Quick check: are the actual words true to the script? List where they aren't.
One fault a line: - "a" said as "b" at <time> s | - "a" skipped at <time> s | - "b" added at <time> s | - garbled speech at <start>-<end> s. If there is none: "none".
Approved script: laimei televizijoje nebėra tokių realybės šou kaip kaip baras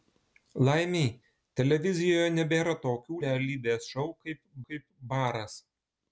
none